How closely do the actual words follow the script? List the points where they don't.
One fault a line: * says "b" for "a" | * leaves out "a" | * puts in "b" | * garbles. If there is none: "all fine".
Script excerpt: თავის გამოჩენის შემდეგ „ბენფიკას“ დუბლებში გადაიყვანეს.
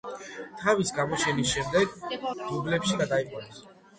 * leaves out "ბენფიკას"